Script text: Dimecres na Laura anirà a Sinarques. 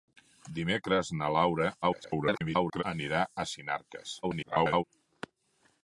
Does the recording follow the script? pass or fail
fail